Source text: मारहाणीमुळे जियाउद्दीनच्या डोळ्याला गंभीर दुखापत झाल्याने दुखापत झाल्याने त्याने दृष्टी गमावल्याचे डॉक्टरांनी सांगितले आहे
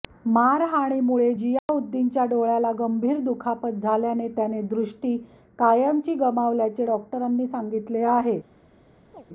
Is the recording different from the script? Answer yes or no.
yes